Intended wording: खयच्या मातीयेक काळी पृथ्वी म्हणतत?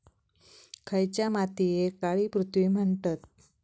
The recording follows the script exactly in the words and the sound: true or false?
true